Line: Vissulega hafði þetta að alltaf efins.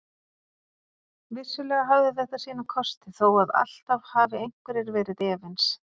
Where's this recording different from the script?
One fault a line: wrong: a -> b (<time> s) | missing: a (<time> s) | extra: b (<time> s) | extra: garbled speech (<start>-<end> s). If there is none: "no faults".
extra: sína kosti þó (2.5 s)
extra: hafi einhverjir verið (4.2 s)